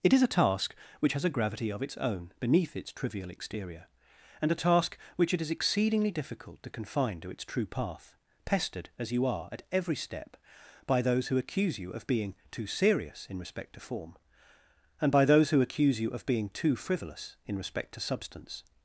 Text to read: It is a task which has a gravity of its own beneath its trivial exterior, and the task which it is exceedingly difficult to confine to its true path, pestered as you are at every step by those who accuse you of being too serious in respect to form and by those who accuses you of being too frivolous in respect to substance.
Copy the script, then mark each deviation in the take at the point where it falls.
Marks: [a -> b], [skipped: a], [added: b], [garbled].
It is a task which has a gravity of its own beneath its trivial exterior, and [the -> a] task which it is exceedingly difficult to confine to its true path, pestered as you are at every step by those who accuse you of being too serious in respect to form and by those who [accuses -> accuse] you of being too frivolous in respect to substance.